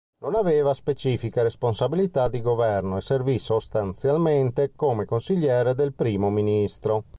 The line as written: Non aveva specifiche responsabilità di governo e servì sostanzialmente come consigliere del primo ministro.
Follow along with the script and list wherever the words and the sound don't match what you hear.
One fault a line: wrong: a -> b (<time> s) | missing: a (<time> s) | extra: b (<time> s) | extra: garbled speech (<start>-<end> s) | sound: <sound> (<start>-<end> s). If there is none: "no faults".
no faults